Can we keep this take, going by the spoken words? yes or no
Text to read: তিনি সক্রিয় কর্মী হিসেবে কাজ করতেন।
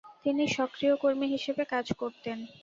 yes